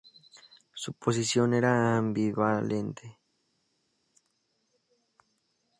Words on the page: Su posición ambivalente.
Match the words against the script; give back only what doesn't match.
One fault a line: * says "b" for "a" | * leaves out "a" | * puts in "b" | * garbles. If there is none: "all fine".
* puts in "era"